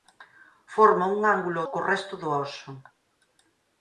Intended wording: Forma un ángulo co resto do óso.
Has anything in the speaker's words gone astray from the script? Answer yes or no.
no